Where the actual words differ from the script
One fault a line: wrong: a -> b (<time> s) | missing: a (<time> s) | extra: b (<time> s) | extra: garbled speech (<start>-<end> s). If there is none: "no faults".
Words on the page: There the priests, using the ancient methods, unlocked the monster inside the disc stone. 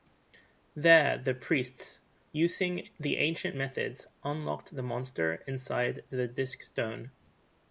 no faults